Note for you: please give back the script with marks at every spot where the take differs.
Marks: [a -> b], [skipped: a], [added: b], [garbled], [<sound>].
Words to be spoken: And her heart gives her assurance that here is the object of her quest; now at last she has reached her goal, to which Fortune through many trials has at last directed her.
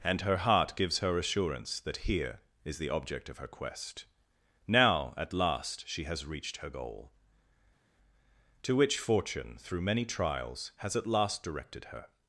And her heart gives her assurance that here is the object of her quest; now at last she has reached her goal, to which Fortune through many trials has at last directed her.